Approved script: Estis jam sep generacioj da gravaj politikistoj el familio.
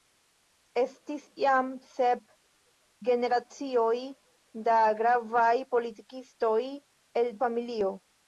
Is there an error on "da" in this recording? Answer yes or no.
no